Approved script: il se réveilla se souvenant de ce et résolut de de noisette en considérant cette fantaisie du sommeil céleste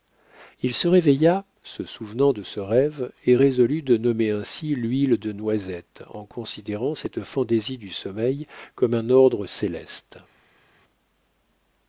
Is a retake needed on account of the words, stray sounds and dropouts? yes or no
yes